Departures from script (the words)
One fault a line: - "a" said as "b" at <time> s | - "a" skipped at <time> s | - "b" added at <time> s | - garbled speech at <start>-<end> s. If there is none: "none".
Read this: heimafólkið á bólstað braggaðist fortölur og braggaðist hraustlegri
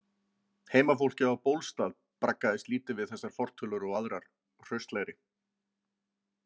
- "lítið við þessar" added at 2.7 s
- "braggaðist" said as "aðrar" at 4.0 s